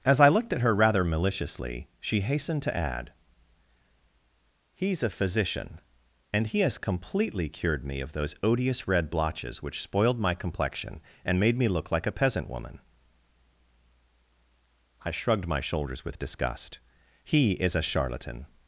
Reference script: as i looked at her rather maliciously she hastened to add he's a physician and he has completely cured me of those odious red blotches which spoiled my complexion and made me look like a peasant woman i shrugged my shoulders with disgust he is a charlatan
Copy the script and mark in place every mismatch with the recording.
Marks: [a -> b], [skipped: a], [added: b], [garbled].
as i looked at her rather maliciously she hastened to add he's a physician and he has completely cured me of those odious red blotches which spoiled my complexion and made me look like a peasant woman i shrugged my shoulders with disgust he is a charlatan